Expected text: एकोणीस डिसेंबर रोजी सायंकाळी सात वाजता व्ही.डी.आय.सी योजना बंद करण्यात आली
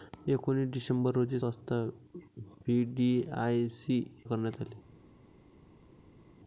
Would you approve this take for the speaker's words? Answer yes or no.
no